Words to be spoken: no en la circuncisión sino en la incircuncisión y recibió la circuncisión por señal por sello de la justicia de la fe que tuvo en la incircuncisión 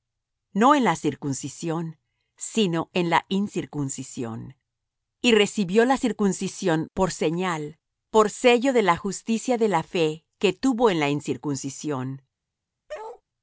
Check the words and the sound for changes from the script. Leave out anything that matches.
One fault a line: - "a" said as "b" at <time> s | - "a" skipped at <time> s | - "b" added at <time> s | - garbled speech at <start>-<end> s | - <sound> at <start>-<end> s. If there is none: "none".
- bark at 12.9-13.2 s